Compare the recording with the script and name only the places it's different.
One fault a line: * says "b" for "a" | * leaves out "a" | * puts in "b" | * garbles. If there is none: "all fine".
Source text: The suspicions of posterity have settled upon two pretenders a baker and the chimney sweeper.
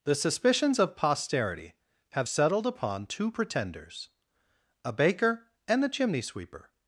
all fine